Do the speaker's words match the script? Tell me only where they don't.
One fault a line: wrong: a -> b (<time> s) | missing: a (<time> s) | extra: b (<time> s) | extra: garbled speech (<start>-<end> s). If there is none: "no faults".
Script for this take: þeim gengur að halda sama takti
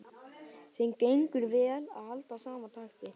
extra: vel (1.5 s)